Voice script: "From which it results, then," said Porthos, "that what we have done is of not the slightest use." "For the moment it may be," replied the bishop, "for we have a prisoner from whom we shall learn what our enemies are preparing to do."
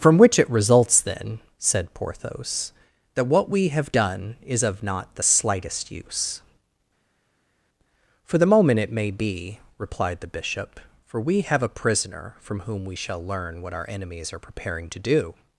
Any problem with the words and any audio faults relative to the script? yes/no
no